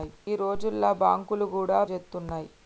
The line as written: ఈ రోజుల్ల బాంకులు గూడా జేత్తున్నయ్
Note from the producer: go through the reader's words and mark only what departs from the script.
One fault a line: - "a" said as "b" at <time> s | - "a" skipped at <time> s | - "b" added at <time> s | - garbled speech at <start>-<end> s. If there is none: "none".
none